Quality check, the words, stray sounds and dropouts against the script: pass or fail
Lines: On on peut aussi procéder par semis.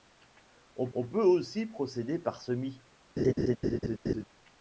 fail